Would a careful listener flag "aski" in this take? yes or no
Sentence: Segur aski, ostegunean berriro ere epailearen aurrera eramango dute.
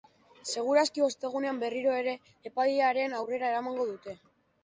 no